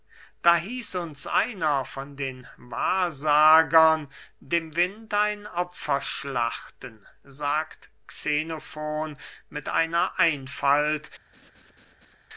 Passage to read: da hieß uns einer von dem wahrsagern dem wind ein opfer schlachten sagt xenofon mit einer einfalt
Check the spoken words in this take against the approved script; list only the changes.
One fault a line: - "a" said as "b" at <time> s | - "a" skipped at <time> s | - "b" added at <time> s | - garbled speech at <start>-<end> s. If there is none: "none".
- "dem" said as "den" at 2.1 s